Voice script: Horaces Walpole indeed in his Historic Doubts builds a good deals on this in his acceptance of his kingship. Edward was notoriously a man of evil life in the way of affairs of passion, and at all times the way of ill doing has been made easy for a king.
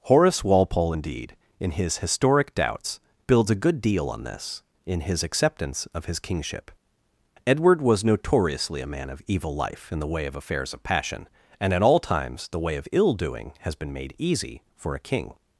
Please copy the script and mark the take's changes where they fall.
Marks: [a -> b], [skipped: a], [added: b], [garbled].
[Horaces -> Horace] Walpole indeed in his Historic Doubts builds a good [deals -> deal] on this in his acceptance of his kingship. Edward was notoriously a man of evil life in the way of affairs of passion, and at all times the way of ill doing has been made easy for a king.